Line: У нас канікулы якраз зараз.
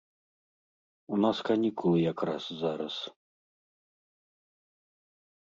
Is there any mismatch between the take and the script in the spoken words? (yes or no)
no